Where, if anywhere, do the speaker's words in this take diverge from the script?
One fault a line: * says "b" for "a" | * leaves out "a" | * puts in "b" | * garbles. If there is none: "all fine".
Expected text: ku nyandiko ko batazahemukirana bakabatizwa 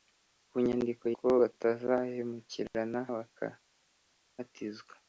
all fine